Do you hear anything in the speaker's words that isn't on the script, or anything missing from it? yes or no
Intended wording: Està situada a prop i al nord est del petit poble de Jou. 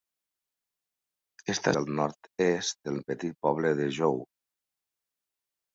yes